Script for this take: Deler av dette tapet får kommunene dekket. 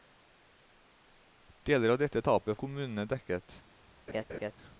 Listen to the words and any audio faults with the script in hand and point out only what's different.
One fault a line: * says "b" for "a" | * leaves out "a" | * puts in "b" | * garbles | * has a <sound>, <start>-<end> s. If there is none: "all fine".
* leaves out "får"
* has a laugh, 4.1-4.5 s